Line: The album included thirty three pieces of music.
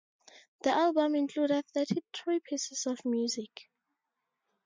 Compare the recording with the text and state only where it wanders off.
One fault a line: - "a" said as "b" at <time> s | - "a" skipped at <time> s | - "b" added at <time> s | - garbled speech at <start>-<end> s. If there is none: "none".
none